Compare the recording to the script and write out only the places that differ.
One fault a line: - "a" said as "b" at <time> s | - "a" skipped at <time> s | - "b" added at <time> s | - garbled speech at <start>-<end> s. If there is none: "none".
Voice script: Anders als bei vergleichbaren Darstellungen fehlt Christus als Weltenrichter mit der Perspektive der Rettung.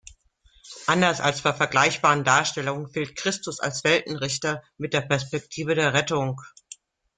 none